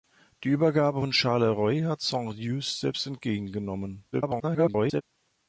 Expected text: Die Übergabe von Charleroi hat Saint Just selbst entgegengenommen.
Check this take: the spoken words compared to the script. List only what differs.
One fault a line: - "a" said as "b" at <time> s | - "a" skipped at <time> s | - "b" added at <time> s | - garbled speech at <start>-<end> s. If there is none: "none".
- garbled speech at 4.1-5.0 s